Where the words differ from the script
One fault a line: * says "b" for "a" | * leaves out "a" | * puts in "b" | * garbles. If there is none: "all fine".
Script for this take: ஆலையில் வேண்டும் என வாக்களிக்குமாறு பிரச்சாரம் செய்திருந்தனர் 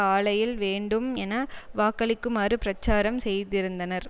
all fine